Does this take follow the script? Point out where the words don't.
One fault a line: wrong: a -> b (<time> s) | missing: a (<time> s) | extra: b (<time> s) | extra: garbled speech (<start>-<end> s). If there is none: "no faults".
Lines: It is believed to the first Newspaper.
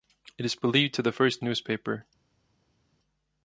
no faults